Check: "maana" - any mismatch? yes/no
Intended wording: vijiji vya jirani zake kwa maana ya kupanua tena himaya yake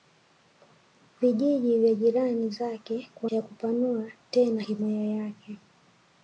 yes